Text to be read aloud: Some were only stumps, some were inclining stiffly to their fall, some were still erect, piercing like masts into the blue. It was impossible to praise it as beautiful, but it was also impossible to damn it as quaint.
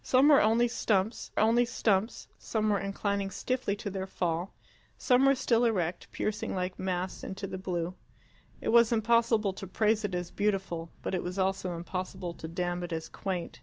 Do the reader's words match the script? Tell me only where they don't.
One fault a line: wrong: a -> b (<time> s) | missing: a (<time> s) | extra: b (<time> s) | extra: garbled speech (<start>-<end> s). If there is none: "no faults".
extra: only stumps (1.4 s)